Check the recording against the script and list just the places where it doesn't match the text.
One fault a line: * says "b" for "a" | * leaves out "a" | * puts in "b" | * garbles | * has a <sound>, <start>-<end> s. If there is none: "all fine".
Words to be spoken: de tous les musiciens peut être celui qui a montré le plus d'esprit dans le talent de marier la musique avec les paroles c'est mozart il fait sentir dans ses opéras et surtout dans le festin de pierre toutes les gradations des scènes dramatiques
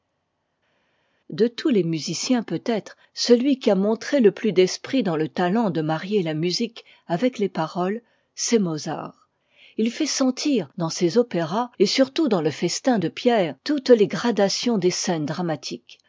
all fine